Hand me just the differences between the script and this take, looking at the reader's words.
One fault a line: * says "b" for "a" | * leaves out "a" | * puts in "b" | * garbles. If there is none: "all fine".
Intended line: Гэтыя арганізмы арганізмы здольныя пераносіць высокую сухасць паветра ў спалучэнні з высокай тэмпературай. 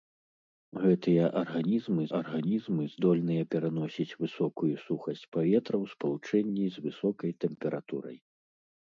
all fine